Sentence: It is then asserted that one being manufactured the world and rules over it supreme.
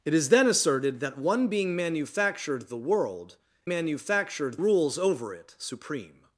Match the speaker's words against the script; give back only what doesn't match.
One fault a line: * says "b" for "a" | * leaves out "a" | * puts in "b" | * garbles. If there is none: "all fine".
* says "manufactured" for "and"